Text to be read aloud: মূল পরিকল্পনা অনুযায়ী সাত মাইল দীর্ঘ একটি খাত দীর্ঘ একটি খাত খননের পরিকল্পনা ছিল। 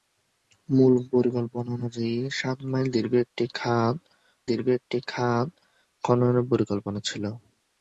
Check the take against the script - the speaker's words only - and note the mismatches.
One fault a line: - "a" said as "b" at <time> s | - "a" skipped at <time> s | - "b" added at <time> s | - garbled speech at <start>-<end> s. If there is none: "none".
none